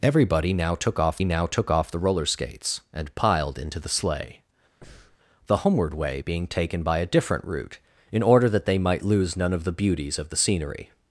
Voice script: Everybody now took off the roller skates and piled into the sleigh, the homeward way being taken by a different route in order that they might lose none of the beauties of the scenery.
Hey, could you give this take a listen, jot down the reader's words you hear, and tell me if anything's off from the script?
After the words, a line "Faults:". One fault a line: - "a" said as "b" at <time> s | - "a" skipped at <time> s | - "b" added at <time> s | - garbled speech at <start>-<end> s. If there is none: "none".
Everybody now took off now took off the roller skates and piled into the sleigh, the homeward way being taken by a different route in order that they might lose none of the beauties of the scenery.
Faults:
- "now took off" added at 1.2 s